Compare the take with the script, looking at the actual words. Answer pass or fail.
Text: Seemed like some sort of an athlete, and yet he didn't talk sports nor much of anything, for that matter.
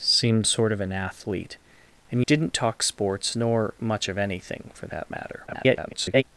fail